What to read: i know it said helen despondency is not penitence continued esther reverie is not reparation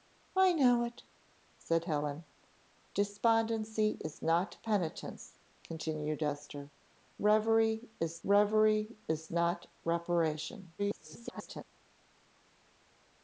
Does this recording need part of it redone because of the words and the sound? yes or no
yes